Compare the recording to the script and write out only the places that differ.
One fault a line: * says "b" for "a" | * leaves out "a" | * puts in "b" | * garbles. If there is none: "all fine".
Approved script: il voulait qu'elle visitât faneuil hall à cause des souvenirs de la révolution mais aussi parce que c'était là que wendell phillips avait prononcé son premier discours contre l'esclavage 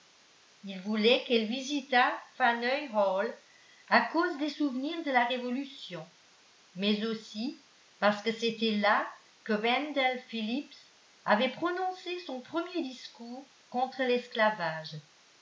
all fine